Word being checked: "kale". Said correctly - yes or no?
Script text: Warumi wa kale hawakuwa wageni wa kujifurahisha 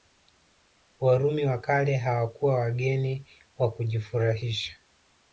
yes